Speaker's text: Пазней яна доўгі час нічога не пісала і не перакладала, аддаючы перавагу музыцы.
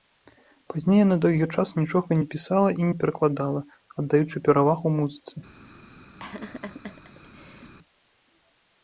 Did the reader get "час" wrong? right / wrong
right